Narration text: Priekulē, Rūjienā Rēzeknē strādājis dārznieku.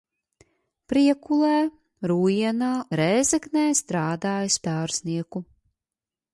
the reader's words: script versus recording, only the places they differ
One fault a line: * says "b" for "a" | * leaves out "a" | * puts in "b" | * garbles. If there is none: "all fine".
all fine